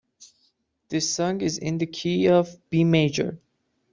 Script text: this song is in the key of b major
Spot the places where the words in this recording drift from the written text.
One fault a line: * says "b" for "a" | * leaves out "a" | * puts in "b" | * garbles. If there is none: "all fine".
all fine